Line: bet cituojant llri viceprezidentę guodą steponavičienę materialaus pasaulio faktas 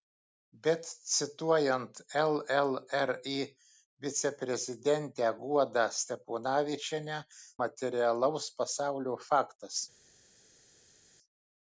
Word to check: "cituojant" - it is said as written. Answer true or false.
true